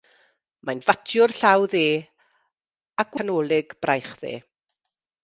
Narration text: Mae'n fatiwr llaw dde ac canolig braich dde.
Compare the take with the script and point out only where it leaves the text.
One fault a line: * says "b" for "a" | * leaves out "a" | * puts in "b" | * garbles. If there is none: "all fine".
all fine